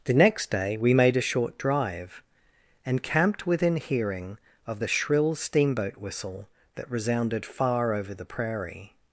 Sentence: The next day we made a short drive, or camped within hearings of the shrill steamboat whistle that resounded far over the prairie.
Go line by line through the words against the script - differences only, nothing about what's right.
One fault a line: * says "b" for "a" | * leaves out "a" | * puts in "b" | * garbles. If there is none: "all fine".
* says "and" for "or"
* says "hearing" for "hearings"